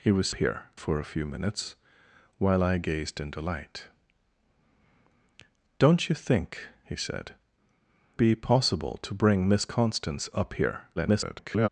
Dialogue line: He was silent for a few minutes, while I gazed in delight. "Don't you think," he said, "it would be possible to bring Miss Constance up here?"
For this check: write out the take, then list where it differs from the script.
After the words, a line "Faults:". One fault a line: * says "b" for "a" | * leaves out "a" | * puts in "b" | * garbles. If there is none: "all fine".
He was here for a few minutes, while I gazed in delight. "Don't you think," he said, "be possible to bring Miss Constance up here?" [garbled]
Faults:
* says "here" for "silent"
* leaves out "it would"
* garbles